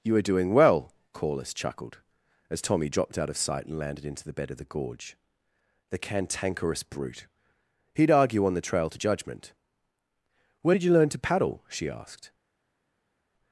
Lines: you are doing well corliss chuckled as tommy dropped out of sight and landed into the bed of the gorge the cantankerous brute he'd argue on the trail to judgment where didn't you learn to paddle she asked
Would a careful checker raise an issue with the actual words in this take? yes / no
yes